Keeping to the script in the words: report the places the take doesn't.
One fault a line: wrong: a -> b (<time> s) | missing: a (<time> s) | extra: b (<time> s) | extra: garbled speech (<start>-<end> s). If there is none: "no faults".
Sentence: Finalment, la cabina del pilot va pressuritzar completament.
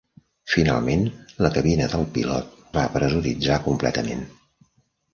no faults